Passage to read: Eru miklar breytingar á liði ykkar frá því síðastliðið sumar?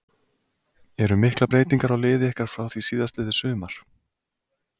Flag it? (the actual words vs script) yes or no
no